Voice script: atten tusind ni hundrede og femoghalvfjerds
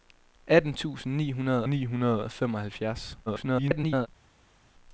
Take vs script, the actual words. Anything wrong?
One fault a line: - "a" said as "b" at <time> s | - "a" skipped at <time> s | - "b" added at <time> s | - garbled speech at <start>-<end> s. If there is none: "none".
- "ni hundrede" added at 1.7 s
- garbled speech at 3.3-4.1 s